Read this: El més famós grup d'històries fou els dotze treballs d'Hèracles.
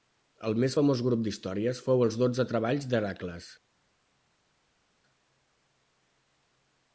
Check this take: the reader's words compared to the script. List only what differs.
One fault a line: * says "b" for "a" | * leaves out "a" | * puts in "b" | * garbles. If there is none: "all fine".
all fine